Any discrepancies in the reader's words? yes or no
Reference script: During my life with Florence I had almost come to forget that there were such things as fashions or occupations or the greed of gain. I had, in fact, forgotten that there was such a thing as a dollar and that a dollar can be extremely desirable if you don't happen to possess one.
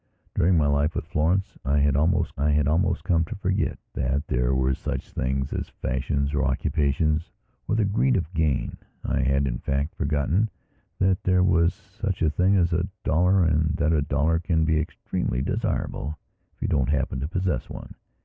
yes